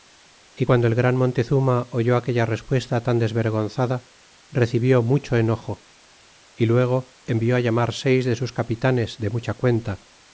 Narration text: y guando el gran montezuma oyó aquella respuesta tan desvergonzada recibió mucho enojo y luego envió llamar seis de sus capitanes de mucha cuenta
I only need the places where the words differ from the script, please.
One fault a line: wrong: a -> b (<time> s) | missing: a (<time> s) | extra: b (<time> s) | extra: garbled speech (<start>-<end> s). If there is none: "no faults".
no faults